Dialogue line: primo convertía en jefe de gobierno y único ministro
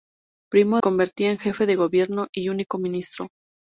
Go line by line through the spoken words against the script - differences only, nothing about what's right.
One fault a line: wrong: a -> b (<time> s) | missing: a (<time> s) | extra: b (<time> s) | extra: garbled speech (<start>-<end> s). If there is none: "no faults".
no faults